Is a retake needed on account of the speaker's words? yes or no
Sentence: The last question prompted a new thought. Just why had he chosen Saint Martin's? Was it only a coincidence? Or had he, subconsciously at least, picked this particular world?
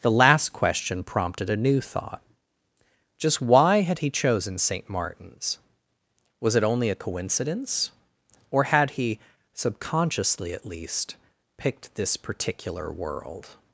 no